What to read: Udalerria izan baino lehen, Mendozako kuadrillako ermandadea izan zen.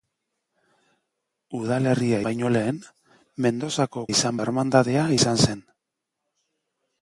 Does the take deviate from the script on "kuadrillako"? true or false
true